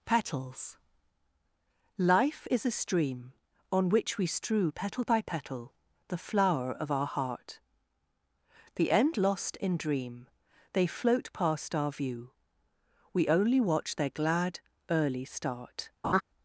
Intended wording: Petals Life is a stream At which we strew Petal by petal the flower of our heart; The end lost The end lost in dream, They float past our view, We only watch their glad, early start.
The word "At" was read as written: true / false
false